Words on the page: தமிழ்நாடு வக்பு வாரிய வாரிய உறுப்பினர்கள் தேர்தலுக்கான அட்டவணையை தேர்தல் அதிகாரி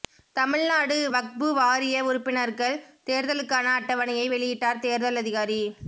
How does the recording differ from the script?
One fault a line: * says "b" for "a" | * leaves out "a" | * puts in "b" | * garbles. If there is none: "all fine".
* leaves out "வாரிய"
* puts in "வெளியிட்டார்"